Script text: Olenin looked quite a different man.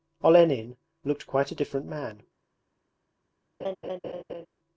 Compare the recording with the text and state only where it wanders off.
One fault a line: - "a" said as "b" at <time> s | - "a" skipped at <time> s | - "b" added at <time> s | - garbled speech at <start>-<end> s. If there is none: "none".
none